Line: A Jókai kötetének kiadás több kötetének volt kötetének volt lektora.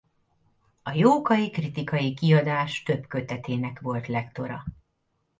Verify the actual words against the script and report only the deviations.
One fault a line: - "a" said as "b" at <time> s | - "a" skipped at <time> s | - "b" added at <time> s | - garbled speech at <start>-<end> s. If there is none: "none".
- "kötetének" said as "kritikai" at 1.5 s
- "kötetének volt" skipped at 4.1 s